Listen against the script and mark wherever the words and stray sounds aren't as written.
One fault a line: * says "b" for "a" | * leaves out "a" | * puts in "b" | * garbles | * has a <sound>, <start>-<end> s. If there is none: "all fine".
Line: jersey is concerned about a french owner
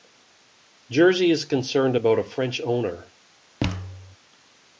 * has a thud, 3.6-4.2 s